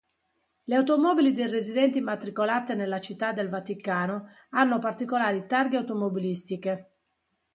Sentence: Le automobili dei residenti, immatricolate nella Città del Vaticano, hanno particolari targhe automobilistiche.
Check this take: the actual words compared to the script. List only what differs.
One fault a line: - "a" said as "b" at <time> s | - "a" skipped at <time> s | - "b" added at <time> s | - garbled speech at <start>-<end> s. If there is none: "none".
none